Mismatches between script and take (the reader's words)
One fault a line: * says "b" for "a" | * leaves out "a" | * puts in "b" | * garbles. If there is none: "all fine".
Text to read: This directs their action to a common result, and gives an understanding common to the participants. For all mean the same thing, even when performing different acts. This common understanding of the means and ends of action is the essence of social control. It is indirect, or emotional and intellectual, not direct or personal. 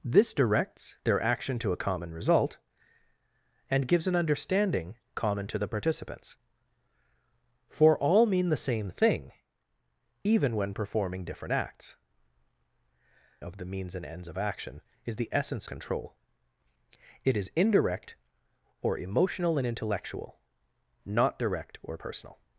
* leaves out "This common understanding"
* leaves out "of social"